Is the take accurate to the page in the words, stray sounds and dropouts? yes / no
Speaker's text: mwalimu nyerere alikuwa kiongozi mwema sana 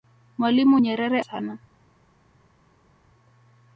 no